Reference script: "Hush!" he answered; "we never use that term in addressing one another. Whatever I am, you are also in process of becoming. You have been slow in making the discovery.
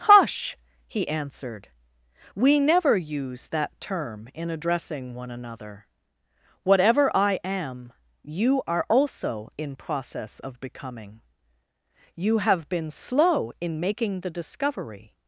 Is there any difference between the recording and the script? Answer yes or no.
no